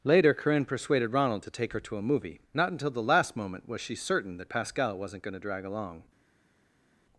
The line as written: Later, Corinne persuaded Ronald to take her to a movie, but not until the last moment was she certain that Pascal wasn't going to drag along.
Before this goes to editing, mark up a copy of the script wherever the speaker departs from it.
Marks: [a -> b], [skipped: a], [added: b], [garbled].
Later, Corinne persuaded Ronald to take her to a movie, [skipped: but] not until the last moment was she certain that Pascal wasn't going to drag along.